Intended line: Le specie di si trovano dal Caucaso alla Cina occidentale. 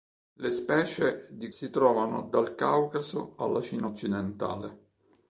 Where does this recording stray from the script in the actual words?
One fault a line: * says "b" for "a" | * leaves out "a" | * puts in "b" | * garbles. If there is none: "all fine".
all fine